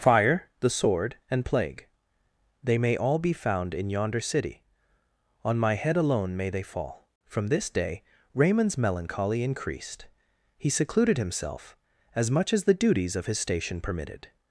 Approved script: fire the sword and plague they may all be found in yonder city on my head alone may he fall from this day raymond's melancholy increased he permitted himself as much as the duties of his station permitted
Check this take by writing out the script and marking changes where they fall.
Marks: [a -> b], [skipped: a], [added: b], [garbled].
fire the sword and plague they may all be found in yonder city on my head alone may [he -> they] fall from this day raymond's melancholy increased he [permitted -> secluded] himself as much as the duties of his station permitted